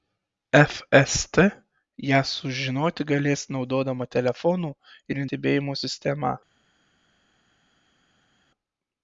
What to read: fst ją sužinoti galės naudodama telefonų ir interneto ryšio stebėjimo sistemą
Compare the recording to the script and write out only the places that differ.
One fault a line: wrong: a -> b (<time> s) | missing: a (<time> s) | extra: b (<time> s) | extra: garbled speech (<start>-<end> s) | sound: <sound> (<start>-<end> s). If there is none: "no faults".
missing: interneto ryšio (5.2 s)